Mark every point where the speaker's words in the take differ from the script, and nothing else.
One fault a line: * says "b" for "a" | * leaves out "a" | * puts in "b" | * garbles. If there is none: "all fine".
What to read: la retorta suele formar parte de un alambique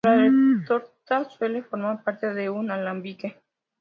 all fine